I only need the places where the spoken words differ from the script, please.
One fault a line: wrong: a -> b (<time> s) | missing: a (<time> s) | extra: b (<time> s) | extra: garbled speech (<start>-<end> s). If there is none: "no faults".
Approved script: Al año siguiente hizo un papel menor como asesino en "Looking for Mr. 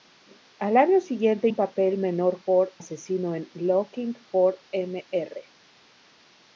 missing: hizo (1.5 s)
wrong: como -> for (2.4 s)